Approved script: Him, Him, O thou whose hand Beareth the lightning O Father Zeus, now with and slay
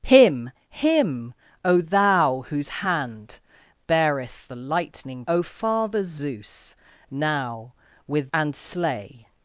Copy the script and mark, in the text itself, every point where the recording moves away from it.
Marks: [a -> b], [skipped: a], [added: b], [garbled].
Him, Him, O thou whose hand Beareth the lightning O Father Zeus, now with and slay